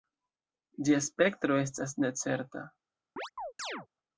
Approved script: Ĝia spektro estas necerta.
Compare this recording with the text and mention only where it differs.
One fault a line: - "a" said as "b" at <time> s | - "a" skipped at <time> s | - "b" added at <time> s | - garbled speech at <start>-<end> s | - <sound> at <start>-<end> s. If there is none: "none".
- chirp at 3.2-3.9 s